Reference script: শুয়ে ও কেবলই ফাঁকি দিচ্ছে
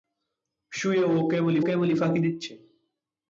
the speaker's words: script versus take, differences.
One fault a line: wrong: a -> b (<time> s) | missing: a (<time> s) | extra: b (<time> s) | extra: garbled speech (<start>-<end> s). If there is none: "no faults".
extra: কেবলই (1.6 s)